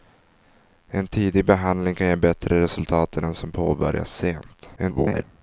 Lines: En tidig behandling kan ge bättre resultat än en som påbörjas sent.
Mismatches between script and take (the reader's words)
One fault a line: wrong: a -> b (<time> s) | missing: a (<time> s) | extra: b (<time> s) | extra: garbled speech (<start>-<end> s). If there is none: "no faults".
extra: garbled speech (4.8-5.2 s)